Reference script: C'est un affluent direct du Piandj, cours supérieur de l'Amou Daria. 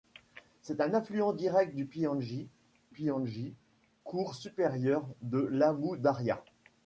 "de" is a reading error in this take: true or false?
false